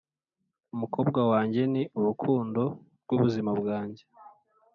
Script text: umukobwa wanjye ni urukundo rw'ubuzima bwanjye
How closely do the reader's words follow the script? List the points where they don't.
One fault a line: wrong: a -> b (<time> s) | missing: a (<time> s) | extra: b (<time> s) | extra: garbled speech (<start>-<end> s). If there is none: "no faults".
no faults